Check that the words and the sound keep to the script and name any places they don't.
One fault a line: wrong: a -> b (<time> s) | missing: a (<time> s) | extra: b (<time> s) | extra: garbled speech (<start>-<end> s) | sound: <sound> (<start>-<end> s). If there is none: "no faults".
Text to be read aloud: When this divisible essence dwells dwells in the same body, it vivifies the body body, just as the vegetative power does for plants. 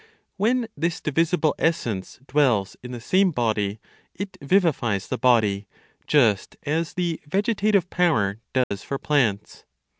missing: dwells (2.8 s)
missing: body (5.7 s)
sound: dropout (8.6-8.7 s)